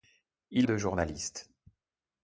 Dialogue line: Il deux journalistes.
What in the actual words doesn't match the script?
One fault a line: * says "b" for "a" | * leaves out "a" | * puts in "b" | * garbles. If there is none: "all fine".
all fine